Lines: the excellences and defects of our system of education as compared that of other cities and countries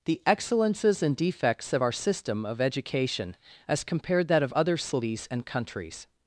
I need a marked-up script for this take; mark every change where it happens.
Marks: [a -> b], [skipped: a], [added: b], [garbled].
the excellences and defects of our system of education as compared that of other cities and countries